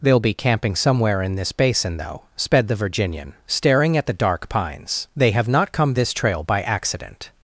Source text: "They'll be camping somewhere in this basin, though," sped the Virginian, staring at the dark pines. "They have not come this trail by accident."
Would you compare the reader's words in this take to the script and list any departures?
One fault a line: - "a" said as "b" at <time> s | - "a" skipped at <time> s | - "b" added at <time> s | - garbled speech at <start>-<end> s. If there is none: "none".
none